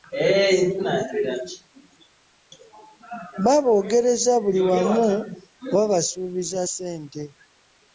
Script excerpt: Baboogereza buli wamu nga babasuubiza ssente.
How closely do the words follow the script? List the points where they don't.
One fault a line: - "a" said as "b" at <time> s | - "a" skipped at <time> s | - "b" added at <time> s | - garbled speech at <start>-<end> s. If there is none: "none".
none